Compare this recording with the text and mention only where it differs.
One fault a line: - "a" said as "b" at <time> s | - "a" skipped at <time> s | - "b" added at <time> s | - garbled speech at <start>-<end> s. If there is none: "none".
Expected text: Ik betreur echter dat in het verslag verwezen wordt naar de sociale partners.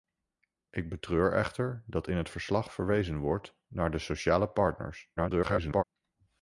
- garbled speech at 5.2-5.8 s